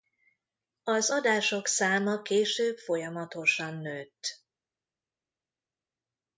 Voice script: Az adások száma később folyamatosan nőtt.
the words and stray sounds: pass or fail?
pass